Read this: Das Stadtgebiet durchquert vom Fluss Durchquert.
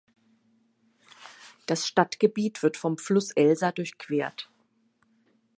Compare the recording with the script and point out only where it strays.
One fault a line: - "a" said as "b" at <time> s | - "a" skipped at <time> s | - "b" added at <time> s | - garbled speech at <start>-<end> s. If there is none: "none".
- "durchquert" said as "wird" at 2.6 s
- "Elsa" added at 3.3 s